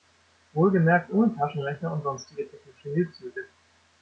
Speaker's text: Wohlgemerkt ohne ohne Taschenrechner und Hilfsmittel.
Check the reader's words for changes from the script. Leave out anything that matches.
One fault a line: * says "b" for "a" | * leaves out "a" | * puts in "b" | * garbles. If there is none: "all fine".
* leaves out "ohne"
* puts in "sonstige technische"